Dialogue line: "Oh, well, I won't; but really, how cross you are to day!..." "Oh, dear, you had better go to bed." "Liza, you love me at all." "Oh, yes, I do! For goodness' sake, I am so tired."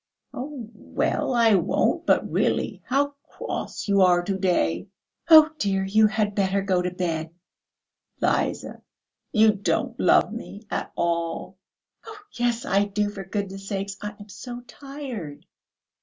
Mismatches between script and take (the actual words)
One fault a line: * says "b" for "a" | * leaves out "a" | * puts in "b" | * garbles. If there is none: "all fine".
* puts in "don't"